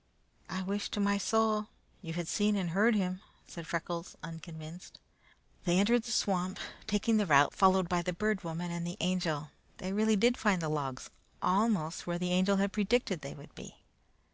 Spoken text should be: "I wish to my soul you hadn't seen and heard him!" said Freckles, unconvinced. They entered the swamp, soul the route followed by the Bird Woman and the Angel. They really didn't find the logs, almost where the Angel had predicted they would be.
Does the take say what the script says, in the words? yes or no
no